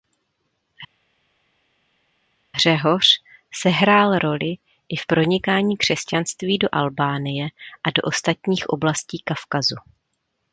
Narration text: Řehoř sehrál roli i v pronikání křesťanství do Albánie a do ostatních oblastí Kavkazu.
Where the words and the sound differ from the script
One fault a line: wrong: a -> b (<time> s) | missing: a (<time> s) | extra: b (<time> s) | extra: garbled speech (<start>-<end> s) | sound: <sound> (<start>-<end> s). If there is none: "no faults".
no faults